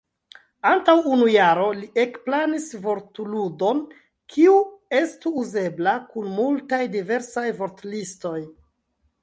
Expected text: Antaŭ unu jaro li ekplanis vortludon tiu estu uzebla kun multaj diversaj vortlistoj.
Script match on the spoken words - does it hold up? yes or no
no